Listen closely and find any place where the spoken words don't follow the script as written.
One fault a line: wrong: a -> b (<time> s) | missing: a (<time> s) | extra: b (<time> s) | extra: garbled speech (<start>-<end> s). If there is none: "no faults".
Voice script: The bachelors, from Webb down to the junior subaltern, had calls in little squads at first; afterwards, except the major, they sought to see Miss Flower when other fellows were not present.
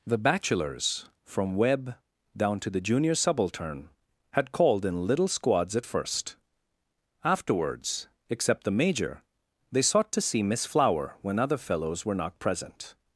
wrong: calls -> called (4.5 s)